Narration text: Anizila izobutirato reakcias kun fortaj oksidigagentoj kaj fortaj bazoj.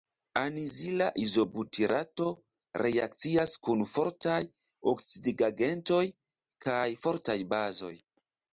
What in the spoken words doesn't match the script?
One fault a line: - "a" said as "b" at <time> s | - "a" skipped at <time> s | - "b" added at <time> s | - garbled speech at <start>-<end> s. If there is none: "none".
none